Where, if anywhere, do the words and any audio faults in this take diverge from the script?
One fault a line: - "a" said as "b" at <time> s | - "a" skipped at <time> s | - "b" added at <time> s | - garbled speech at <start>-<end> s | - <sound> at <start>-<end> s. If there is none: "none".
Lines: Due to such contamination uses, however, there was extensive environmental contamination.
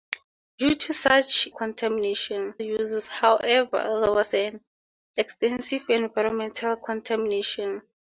none